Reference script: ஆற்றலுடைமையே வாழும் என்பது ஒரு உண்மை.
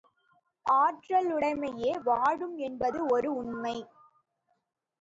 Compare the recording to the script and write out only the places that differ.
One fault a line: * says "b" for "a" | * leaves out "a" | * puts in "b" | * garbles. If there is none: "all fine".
all fine